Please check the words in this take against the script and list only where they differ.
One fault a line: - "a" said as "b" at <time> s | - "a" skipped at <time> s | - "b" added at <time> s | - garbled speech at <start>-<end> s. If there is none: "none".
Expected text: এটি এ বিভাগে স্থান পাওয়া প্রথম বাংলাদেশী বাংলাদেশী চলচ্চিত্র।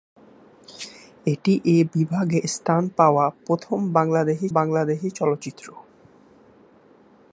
none